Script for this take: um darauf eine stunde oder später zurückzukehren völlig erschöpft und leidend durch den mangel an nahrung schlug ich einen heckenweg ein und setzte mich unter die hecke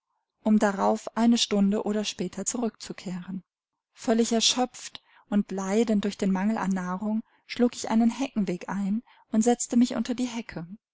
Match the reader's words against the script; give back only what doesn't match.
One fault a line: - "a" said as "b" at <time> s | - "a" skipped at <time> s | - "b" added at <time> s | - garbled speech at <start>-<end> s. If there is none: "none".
none